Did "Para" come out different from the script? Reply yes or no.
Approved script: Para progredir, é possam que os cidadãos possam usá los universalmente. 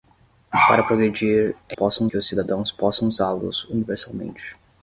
no